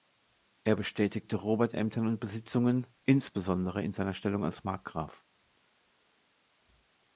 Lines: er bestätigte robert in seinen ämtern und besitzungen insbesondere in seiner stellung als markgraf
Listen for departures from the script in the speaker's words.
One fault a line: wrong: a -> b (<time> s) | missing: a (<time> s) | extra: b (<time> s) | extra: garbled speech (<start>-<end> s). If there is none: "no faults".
missing: in seinen (1.7 s)